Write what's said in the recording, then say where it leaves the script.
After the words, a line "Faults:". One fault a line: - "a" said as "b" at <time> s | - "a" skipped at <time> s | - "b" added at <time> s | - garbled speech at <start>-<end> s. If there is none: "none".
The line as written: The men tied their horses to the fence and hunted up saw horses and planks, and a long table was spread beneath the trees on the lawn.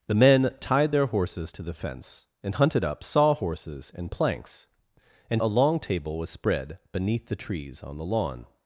The men tied their horses to the fence and hunted up saw horses and planks, and a long table was spread beneath the trees on the lawn.
Faults:
none